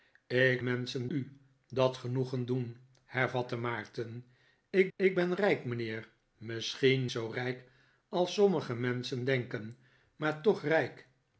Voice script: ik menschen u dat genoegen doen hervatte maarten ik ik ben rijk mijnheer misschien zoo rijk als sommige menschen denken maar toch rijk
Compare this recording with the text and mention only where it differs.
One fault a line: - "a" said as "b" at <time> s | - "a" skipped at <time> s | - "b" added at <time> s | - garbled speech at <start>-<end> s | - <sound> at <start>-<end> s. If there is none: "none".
none